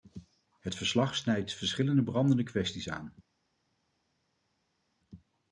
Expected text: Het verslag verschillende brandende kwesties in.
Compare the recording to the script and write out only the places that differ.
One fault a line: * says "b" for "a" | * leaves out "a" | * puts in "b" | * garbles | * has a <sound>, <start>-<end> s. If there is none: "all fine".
* puts in "snijdt"
* says "aan" for "in"